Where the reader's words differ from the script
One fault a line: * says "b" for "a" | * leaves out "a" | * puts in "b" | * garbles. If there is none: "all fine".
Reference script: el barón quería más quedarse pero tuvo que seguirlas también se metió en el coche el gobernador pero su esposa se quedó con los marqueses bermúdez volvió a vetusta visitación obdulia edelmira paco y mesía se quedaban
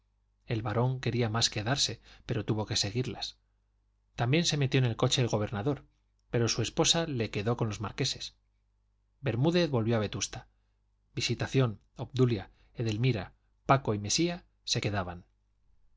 all fine